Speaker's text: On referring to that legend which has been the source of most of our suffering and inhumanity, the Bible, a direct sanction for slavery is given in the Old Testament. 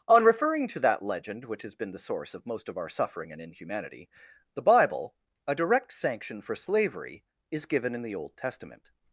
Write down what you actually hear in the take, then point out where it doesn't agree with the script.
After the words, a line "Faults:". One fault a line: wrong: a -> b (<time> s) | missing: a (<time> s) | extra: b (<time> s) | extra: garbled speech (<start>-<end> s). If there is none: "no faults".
On referring to that legend which has been the source of most of our suffering and inhumanity, the Bible, a direct sanction for slavery is given in the Old Testament.
Faults:
no faults